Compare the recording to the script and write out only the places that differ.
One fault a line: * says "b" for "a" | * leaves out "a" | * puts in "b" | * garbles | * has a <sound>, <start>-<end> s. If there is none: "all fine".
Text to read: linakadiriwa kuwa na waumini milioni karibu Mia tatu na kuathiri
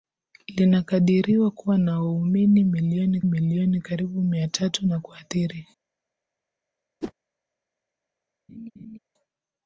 * puts in "milioni"
* has a whoosh, 7.0-7.1 s
* has a laugh, 8.5-9.0 s